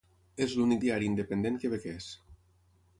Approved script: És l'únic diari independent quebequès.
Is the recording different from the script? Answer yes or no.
no